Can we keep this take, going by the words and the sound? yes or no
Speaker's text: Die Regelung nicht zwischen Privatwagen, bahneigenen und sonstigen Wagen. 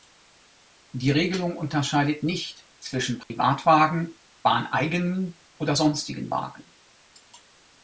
no